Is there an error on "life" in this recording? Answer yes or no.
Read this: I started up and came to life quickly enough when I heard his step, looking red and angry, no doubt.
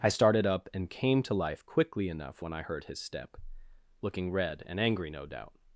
no